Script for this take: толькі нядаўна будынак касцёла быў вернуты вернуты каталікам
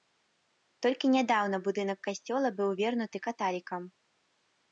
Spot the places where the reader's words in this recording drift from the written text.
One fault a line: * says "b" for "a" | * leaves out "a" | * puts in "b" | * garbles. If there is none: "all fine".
* leaves out "вернуты"